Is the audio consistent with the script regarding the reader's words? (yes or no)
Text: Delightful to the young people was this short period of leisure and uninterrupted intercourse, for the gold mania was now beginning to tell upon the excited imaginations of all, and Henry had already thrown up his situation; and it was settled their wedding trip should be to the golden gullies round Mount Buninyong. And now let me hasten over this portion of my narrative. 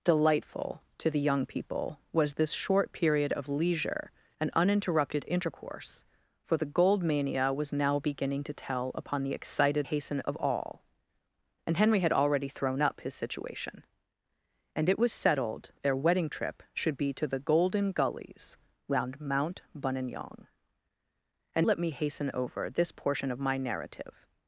no